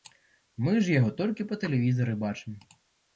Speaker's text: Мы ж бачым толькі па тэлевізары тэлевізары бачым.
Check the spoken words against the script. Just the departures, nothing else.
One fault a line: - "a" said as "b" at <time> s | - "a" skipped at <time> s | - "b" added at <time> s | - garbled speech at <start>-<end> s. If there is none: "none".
- "бачым" said as "яго" at 1.0 s
- "тэлевізары" skipped at 2.1 s